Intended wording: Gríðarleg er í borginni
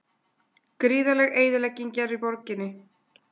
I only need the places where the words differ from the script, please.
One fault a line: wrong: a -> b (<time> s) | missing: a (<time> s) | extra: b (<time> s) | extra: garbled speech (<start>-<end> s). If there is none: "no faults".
extra: eyðilegging (1.4 s)